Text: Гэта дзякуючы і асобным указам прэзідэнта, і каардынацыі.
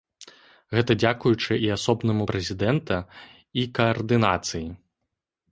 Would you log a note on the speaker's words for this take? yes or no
yes